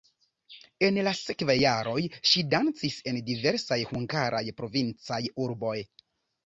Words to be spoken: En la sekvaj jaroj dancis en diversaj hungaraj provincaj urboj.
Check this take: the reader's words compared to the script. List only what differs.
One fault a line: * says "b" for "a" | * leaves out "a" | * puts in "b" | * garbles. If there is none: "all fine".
* puts in "ŝi"